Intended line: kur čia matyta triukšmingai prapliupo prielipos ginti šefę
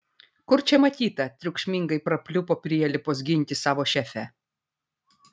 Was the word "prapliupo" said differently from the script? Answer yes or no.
no